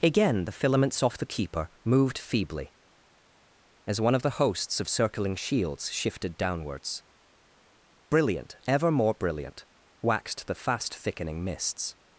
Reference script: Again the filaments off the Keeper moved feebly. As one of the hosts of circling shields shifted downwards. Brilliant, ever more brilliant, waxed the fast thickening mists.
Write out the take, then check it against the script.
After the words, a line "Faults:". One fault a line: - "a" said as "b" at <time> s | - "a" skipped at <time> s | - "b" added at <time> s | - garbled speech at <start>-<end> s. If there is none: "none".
Again the filaments off the Keeper moved feebly. As one of the hosts of circling shields shifted downwards. Brilliant, ever more brilliant, waxed the fast thickening mists.
Faults:
none